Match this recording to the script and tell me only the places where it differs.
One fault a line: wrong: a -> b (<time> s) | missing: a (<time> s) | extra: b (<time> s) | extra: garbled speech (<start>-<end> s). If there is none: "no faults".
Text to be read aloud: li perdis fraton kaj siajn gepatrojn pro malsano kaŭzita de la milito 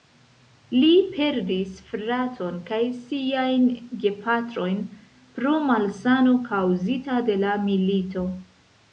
no faults